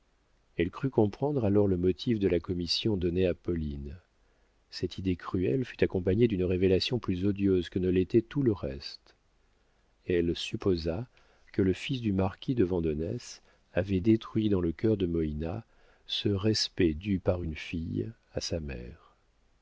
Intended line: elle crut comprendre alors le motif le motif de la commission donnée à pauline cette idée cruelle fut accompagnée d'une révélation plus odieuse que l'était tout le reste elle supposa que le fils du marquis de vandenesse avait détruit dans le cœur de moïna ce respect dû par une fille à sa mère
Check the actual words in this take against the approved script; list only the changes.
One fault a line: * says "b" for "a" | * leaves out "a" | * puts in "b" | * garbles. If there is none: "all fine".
* leaves out "le motif"
* puts in "ne"